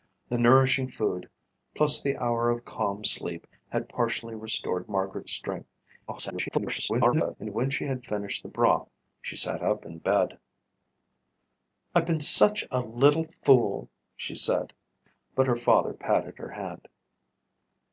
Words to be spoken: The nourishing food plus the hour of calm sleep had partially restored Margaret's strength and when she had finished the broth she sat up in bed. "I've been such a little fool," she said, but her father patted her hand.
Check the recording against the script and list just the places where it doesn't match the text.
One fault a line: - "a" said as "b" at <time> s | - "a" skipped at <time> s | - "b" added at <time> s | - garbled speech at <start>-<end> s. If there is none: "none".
- garbled speech at 6.1-7.4 s